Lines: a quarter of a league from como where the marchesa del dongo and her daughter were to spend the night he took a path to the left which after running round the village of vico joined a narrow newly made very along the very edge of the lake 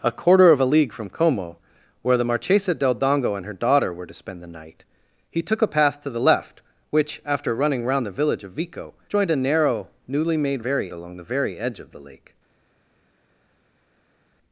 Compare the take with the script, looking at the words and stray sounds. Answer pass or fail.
pass